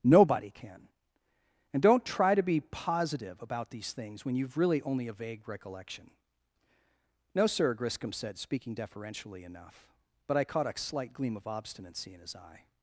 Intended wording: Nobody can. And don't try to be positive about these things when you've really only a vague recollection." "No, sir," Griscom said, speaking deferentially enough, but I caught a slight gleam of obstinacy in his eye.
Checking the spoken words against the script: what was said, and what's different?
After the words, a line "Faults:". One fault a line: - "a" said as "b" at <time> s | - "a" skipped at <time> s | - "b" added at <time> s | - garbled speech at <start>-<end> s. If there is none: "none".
Nobody can. And don't try to be positive about these things when you've really only a vague recollection." "No, sir," Griscom said, speaking deferentially enough, but I caught a slight gleam of obstinacy in his eye.
Faults:
none